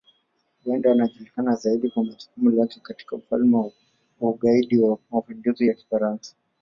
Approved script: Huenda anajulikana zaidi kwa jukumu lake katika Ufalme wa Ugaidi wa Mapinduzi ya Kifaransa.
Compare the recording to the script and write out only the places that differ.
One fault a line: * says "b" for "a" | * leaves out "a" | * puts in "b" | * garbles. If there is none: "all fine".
all fine